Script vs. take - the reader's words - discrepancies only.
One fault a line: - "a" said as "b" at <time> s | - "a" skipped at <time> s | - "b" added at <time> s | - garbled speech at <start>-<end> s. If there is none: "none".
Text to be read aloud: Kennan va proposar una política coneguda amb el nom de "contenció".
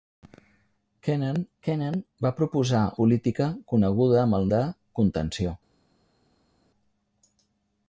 - "kennan" added at 1.7 s
- "una" skipped at 2.8 s
- "nom" skipped at 4.5 s